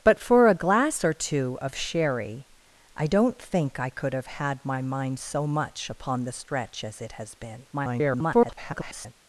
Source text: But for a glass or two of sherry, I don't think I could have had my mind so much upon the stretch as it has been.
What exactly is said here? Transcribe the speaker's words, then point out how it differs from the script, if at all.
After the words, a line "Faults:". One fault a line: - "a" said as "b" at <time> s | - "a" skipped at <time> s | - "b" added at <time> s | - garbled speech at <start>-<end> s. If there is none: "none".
But for a glass or two of sherry, I don't think I could have had my mind so much upon the stretch as it has been. [garbled]
Faults:
- garbled speech at 7.7-9.1 s